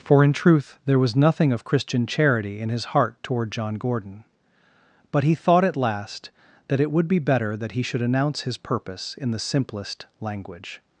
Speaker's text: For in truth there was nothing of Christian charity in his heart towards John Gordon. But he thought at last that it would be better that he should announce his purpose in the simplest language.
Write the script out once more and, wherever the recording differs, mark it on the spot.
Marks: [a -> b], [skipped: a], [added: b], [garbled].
For in truth there was nothing of Christian charity in his heart [towards -> toward] John Gordon. But he thought at last that it would be better that he should announce his purpose in the simplest language.